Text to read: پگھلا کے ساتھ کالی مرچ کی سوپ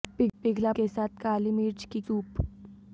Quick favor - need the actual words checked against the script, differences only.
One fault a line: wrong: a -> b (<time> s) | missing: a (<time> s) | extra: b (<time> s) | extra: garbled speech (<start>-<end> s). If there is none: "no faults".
no faults